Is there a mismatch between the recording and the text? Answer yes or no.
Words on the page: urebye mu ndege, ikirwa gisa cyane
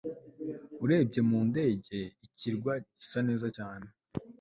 yes